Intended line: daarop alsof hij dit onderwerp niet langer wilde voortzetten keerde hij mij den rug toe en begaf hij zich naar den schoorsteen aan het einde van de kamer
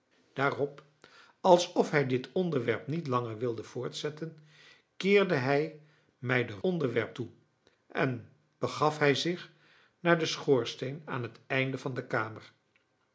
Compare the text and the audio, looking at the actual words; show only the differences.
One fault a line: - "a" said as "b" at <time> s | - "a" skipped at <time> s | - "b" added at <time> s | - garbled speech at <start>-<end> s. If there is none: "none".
- "rug" said as "onderwerp" at 6.6 s